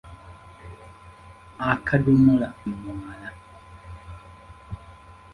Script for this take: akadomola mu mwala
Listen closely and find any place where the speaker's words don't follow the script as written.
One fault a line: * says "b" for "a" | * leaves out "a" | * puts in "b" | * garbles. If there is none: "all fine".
all fine